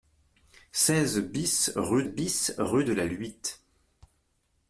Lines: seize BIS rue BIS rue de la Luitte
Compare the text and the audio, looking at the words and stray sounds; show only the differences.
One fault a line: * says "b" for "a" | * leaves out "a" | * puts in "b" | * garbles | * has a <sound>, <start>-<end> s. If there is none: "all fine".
all fine